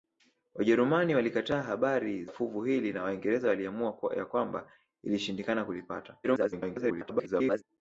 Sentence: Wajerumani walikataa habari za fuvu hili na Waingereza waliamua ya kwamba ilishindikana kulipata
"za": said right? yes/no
no